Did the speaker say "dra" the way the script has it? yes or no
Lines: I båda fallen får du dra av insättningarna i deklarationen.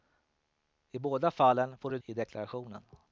no